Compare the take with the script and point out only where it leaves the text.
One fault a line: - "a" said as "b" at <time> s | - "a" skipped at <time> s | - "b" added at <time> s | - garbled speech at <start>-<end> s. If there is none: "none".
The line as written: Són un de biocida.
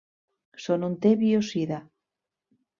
none